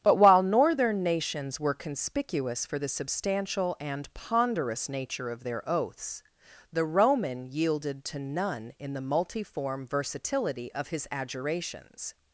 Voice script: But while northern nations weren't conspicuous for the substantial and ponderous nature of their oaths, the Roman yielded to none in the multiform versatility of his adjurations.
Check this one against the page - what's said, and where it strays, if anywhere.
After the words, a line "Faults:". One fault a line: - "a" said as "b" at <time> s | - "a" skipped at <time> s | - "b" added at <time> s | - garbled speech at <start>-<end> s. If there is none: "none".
But while northern nations were conspicuous for the substantial and ponderous nature of their oaths, the Roman yielded to none in the multiform versatility of his adjurations.
Faults:
- "weren't" said as "were" at 1.6 s